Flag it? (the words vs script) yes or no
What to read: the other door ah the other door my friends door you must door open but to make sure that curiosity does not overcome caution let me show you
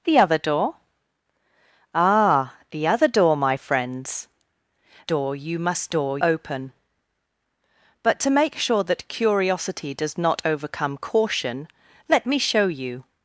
no